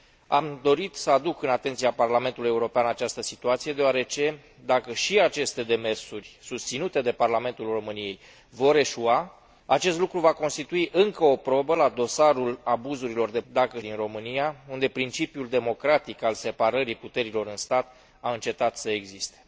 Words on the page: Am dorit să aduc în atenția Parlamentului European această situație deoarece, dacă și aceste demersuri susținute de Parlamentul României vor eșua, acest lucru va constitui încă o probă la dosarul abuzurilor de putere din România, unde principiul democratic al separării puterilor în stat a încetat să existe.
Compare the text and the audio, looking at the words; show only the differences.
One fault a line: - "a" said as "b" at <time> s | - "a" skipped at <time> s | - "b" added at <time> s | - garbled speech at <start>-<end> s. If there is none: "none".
- "putere" said as "dacă" at 13.5 s